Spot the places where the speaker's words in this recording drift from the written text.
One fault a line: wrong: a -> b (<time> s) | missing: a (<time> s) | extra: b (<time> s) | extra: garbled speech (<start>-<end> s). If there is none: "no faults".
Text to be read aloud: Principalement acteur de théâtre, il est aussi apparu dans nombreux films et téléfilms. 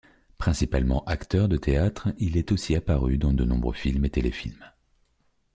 extra: de (3.3 s)